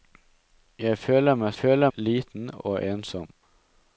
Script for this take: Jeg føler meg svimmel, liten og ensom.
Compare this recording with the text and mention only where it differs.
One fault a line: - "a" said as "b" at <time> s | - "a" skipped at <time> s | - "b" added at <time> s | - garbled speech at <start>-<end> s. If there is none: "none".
- "svimmel" said as "føler" at 1.5 s